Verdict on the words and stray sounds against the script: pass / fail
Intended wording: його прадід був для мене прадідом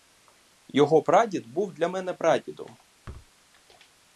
fail